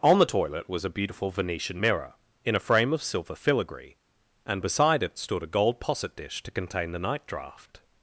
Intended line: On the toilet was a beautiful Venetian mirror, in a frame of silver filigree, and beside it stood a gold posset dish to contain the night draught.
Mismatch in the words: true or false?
false